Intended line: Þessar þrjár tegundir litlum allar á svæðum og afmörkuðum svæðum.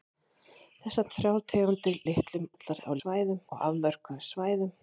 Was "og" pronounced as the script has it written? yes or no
yes